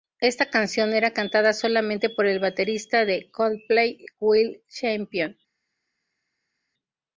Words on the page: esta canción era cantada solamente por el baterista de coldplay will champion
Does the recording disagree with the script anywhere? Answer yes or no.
no